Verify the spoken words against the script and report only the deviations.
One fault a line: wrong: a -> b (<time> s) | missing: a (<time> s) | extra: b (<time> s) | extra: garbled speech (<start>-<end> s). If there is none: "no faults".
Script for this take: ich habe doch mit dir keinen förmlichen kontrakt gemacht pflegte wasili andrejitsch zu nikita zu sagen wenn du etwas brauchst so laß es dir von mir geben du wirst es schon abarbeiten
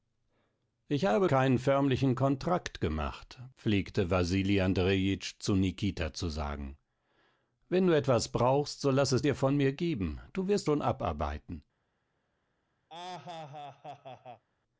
missing: doch mit dir (1.3 s)
missing: es (10.7 s)